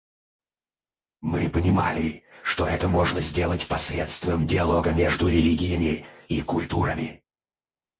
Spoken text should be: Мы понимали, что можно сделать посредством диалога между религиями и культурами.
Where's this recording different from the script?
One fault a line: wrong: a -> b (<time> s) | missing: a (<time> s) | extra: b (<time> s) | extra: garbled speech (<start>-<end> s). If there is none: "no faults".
extra: это (2.6 s)